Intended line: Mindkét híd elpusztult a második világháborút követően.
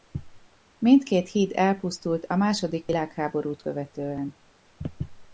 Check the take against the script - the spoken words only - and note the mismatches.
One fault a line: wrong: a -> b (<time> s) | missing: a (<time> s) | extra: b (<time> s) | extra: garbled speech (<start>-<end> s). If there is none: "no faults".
no faults